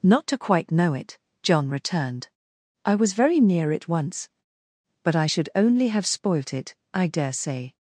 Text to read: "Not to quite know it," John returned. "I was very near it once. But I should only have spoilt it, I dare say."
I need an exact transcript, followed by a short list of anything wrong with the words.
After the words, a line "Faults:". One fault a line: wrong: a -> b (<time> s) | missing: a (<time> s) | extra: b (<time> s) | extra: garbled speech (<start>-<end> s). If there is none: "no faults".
"Not to quite know it," John returned. "I was very near it once. But I should only have spoilt it, I dare say."
Faults:
no faults